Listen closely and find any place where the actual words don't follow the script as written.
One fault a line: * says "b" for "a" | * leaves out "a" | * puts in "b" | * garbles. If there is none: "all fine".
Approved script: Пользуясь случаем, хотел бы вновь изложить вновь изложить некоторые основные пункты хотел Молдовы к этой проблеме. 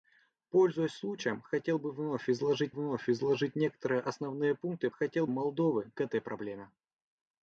all fine